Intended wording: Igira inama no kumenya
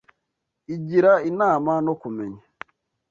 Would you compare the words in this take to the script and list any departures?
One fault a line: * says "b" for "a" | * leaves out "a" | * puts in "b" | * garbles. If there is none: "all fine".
all fine